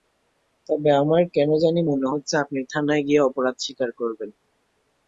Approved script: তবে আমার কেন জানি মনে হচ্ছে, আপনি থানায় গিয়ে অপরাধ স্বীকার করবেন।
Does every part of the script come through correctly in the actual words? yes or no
yes